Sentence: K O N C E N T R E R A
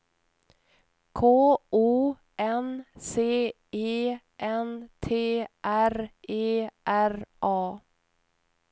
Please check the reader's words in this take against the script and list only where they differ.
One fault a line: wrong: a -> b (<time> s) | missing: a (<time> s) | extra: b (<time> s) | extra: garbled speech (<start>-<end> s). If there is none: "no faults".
no faults